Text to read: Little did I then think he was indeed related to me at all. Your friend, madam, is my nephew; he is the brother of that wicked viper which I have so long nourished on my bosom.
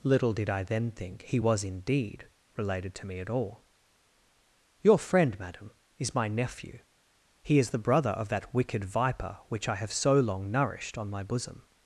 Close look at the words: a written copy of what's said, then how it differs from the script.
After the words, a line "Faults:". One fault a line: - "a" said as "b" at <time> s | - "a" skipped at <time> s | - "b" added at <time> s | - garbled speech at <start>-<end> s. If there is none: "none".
Little did I then think he was indeed related to me at all. Your friend, madam, is my nephew; he is the brother of that wicked viper which I have so long nourished on my bosom.
Faults:
none